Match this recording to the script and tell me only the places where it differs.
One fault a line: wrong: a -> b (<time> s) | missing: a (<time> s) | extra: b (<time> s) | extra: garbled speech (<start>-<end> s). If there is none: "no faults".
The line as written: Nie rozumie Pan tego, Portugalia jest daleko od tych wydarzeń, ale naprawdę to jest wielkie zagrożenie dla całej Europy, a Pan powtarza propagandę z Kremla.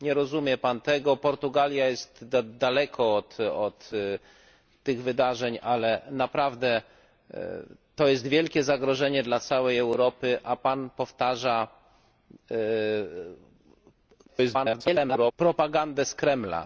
extra: garbled speech (14.3-15.3 s)